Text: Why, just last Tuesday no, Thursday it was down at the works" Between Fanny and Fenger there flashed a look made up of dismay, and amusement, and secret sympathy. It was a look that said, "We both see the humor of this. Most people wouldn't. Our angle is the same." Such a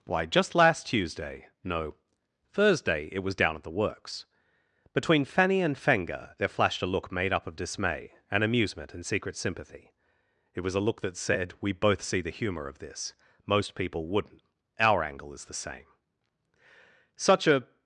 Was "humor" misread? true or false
false